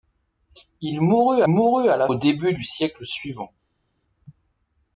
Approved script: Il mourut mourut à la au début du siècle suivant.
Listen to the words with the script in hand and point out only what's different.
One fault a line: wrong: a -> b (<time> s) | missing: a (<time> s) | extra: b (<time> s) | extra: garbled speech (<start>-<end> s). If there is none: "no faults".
no faults